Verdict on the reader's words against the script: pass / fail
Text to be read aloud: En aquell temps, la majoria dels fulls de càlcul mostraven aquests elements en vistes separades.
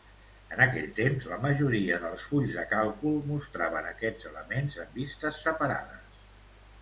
pass